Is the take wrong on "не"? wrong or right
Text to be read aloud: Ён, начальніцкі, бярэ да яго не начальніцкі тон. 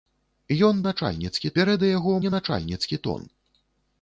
right